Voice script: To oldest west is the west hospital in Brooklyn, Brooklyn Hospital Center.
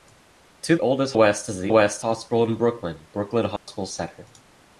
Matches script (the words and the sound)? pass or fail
fail